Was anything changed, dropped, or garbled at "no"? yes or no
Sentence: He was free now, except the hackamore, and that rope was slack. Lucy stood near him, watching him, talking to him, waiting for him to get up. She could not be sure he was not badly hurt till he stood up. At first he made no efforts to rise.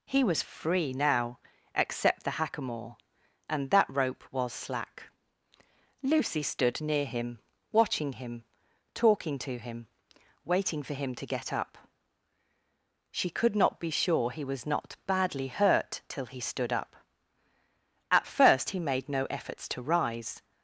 no